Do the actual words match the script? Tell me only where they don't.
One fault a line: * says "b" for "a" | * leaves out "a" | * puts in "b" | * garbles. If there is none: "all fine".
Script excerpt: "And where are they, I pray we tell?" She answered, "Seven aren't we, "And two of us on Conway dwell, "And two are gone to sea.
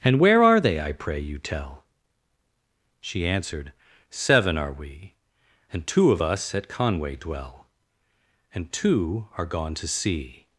* says "you" for "we"
* says "are" for "aren't"
* says "at" for "on"